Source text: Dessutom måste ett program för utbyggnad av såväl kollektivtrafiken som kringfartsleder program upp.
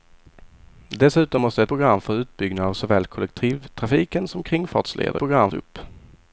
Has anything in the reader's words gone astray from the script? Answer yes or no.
no